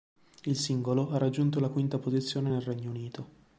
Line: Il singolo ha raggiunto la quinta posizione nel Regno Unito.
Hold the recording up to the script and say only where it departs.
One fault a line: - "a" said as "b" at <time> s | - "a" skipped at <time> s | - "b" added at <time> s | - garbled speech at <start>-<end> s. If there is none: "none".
none